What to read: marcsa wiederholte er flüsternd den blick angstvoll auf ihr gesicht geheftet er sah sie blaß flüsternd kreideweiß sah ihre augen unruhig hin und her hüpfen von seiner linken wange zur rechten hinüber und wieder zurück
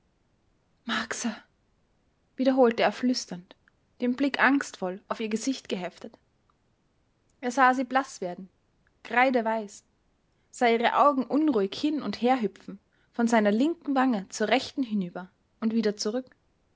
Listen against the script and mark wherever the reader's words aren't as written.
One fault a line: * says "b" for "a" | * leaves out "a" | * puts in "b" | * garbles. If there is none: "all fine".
* says "werden" for "flüsternd"